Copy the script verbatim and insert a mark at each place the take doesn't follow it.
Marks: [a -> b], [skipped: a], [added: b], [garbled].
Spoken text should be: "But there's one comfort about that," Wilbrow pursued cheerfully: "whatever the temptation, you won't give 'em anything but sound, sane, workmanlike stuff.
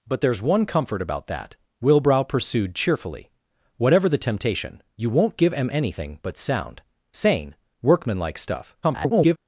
"But there's one comfort about that," Wilbrow pursued cheerfully: "whatever the temptation, you won't give 'em anything but sound, sane, workmanlike stuff. [garbled]